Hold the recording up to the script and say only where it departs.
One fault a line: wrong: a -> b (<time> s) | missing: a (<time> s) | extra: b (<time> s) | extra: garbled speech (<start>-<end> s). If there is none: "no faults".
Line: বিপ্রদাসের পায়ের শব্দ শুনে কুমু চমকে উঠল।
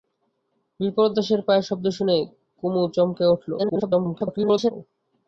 extra: garbled speech (3.6-4.7 s)